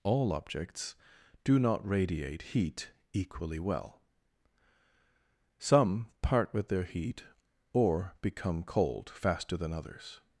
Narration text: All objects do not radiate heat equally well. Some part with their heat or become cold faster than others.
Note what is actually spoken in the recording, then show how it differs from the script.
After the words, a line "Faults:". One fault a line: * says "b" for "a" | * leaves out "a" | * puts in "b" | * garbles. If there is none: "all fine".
All objects do not radiate heat equally well. Some part with their heat or become cold faster than others.
Faults:
all fine